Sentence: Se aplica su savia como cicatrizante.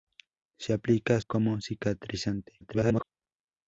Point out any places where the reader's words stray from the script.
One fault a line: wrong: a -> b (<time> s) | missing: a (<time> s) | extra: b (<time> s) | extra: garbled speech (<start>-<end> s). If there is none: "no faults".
missing: su savia (1.2 s)
extra: garbled speech (2.6-3.0 s)